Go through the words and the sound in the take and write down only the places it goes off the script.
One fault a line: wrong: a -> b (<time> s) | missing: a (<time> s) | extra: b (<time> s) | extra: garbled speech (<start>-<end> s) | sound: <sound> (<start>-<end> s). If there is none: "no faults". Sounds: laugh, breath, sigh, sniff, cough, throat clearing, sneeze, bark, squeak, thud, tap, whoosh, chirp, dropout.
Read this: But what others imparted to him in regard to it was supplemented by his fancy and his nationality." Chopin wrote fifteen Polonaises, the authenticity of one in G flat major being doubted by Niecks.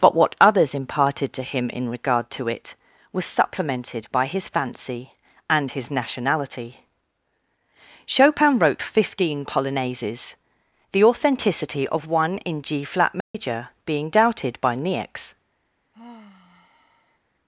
sound: dropout (13.2-13.3 s)
sound: sigh (15.9-17.2 s)